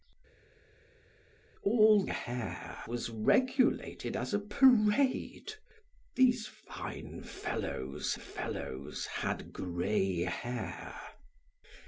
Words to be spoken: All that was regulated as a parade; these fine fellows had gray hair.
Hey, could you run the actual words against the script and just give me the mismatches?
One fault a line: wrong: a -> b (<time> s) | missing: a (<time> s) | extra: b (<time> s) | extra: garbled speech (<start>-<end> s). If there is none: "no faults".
wrong: that -> hair (2.0 s)
extra: fellows (8.1 s)